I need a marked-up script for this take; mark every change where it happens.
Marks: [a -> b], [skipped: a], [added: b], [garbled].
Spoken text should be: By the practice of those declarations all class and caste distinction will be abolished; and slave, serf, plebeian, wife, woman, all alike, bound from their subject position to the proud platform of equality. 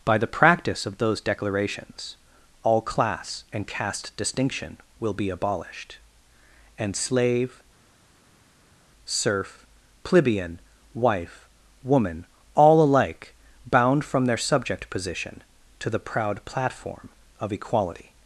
By the practice of those declarations all class and caste distinction will be abolished; and slave, serf, plebeian, wife, woman, all alike, bound from their subject position to the proud platform of equality.